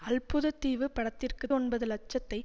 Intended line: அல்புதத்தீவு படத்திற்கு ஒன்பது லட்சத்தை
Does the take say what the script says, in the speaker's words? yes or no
yes